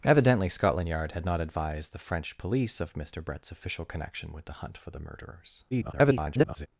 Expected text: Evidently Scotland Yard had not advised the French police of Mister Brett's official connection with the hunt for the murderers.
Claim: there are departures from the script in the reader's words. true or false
true